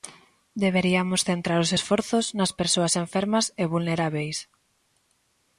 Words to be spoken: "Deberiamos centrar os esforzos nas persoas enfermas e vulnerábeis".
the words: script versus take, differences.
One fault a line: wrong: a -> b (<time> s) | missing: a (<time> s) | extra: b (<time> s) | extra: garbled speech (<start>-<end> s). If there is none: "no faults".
no faults